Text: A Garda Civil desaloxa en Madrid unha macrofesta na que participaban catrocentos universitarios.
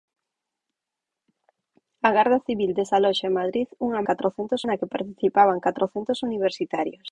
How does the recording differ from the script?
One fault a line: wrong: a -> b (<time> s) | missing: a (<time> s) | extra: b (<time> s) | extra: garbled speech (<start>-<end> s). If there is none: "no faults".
wrong: macrofesta -> catrocentos (4.1 s)